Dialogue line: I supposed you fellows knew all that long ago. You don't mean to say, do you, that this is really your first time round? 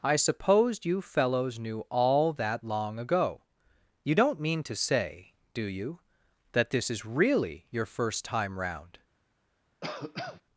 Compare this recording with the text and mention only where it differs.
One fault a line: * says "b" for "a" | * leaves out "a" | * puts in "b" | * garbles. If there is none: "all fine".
all fine